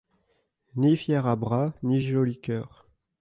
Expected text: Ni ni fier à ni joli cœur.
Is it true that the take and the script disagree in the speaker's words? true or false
true